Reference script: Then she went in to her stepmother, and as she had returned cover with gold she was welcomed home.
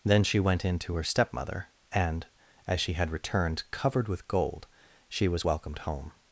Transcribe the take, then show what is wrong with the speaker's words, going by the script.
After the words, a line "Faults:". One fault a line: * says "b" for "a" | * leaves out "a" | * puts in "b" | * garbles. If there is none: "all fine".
Then she went in to her stepmother, and as she had returned covered with gold she was welcomed home.
Faults:
* says "covered" for "cover"